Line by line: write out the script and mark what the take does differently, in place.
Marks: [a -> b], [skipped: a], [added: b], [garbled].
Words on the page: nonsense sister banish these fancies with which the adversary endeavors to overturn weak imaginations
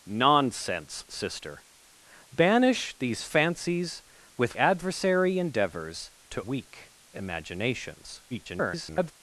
nonsense sister banish these fancies with [skipped: which the] adversary endeavors to [skipped: overturn] weak imaginations [garbled]